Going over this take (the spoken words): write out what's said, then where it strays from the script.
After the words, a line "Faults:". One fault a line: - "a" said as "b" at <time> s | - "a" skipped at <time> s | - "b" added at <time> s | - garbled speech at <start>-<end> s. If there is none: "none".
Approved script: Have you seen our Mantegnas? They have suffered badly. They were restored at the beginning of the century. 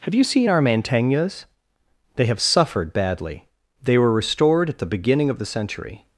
Have you seen our Mantegnas? They have suffered badly. They were restored at the beginning of the century.
Faults:
none